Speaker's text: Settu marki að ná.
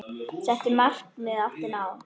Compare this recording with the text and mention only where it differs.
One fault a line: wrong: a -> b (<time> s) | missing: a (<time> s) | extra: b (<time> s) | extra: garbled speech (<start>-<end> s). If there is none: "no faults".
extra: átti (1.4 s)